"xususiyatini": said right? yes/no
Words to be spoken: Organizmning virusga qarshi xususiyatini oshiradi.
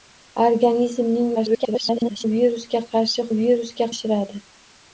no